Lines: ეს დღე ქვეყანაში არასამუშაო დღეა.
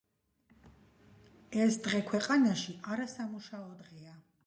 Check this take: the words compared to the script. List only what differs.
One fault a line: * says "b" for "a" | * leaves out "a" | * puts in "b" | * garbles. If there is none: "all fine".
all fine